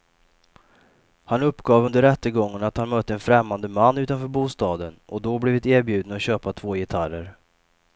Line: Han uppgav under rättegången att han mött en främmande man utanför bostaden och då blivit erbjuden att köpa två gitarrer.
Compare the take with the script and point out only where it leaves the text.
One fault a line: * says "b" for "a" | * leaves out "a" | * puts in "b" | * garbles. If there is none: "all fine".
all fine